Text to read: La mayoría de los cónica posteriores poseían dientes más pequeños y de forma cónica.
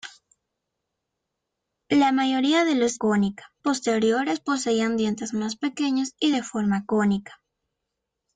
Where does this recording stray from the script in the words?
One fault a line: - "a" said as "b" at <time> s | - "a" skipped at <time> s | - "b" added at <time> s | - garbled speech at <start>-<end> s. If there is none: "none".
none